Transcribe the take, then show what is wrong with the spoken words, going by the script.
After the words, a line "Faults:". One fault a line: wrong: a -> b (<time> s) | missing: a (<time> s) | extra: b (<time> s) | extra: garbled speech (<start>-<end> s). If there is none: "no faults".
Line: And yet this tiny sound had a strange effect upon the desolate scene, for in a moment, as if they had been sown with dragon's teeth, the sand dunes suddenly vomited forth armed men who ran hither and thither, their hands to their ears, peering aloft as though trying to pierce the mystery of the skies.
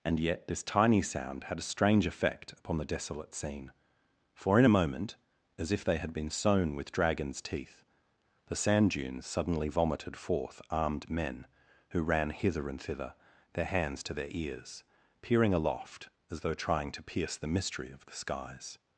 And yet this tiny sound had a strange effect upon the desolate scene, for in a moment, as if they had been sown with dragon's teeth, the sand dunes suddenly vomited forth armed men who ran hither and thither, their hands to their ears, peering aloft as though trying to pierce the mystery of the skies.
Faults:
no faults